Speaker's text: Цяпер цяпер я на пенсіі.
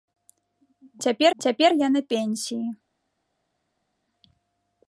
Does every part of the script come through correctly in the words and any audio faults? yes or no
yes